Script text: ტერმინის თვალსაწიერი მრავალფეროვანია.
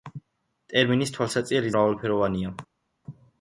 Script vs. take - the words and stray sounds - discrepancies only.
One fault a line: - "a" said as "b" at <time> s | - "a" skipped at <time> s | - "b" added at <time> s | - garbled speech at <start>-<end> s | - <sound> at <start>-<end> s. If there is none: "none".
none